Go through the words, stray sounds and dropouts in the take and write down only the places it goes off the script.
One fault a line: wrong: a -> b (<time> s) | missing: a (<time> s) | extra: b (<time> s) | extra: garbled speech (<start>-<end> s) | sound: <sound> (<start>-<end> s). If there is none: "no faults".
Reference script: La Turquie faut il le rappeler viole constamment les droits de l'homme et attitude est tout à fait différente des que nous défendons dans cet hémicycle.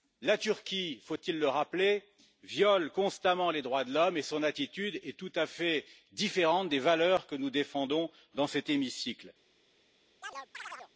extra: son (4.2 s)
extra: valeurs (6.8 s)
sound: chirp (10.2-10.9 s)